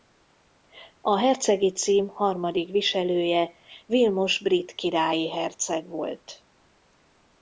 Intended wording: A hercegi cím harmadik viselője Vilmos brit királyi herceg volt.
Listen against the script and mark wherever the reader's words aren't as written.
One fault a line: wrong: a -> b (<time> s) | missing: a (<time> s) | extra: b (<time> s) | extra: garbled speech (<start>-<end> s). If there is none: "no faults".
no faults